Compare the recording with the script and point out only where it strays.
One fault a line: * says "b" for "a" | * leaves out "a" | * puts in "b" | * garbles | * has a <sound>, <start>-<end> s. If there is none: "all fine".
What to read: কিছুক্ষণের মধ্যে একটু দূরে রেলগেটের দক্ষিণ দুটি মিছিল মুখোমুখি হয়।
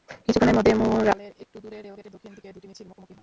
* puts in "ম্যুরালের"
* puts in "দিকে"